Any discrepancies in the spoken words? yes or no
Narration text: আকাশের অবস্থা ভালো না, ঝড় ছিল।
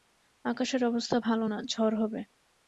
yes